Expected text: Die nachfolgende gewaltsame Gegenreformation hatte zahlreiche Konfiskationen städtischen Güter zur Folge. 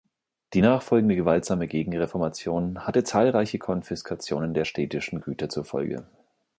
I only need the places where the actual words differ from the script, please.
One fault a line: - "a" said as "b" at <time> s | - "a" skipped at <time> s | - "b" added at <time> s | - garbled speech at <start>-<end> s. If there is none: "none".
- "der" added at 4.5 s